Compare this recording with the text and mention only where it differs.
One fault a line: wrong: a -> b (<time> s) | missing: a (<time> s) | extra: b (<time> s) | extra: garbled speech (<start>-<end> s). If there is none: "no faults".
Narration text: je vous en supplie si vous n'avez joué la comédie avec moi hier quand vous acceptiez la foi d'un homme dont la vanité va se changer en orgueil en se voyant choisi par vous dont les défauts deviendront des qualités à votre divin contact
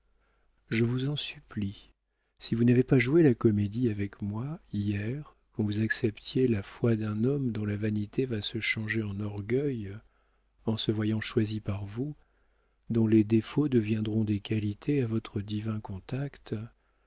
extra: pas (2.8 s)